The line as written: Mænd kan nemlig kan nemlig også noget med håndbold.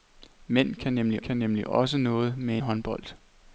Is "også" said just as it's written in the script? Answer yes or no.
yes